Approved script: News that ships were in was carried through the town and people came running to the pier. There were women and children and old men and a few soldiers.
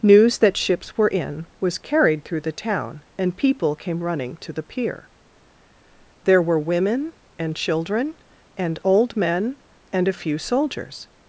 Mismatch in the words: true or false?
false